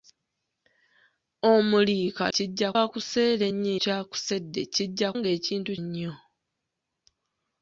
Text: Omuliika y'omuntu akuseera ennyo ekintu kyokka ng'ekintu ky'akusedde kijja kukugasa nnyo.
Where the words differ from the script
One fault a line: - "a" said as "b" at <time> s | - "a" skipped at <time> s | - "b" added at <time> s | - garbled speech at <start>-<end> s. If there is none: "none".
- "y'omuntu" said as "kijja" at 2.3 s
- "ekintu kyokka ng'ekintu" skipped at 3.7 s
- "kukugasa" said as "ng'ekintu" at 5.2 s